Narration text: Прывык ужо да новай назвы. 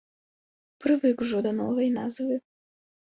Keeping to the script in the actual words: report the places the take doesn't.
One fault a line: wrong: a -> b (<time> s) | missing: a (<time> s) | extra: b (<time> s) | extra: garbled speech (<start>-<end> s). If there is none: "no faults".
no faults